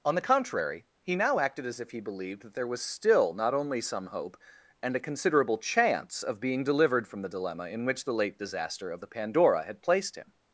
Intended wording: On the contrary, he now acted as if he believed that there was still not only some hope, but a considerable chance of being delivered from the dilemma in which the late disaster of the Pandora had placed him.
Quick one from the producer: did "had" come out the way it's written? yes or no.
yes